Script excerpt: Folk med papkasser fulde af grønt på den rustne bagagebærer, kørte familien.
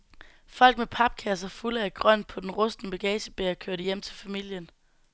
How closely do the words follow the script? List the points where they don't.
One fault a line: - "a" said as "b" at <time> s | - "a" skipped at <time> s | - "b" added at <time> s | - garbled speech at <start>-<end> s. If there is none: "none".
- "hjem til" added at 3.8 s